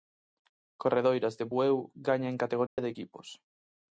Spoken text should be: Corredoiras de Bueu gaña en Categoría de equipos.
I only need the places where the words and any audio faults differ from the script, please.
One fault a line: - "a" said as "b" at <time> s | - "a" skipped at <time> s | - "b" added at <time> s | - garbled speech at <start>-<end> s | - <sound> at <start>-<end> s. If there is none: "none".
- dropout at 2.7-2.8 s